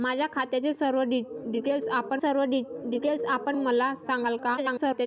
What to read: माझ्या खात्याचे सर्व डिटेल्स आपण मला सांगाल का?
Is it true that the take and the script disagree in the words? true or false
true